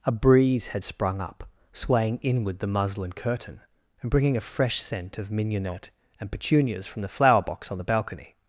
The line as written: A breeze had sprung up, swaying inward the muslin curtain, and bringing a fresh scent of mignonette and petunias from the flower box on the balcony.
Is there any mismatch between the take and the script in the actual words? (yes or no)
no